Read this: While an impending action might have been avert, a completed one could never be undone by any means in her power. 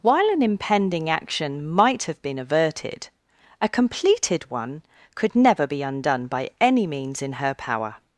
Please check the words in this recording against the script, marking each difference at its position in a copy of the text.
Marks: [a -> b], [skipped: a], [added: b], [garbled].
While an impending action might have been [avert, -> averted] a completed one could never be undone by any means in her power.